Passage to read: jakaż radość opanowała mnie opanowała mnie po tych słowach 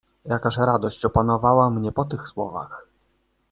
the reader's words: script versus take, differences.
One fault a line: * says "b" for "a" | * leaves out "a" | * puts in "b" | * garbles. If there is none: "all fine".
* leaves out "opanowała mnie"